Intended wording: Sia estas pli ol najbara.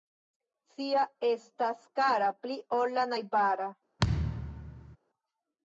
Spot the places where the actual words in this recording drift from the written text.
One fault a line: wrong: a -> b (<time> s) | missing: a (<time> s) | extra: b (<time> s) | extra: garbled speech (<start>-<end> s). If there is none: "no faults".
extra: kara (2.0 s)
extra: la (3.0 s)